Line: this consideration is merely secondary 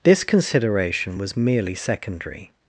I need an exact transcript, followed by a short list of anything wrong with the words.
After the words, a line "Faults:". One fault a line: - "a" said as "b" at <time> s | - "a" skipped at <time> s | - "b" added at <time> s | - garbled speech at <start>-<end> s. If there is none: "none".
this consideration was merely secondary
Faults:
- "is" said as "was" at 1.2 s